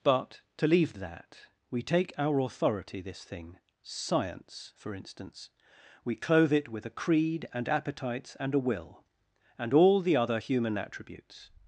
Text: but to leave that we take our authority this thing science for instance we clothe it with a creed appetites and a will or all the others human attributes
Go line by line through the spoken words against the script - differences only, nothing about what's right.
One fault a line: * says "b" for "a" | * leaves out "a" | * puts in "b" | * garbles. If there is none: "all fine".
* puts in "and"
* says "and" for "or"
* says "other" for "others"